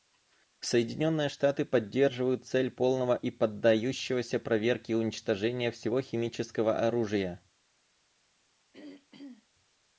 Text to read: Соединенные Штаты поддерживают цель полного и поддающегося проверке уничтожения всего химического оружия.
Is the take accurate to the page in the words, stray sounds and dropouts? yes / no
no